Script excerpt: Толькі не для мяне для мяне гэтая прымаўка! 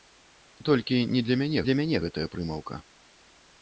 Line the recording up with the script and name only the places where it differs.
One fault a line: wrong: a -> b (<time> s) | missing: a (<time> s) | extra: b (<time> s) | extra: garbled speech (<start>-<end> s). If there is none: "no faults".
no faults